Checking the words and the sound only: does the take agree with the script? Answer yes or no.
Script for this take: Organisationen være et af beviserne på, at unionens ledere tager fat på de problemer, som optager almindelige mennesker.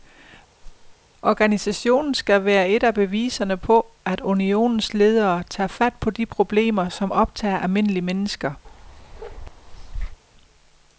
no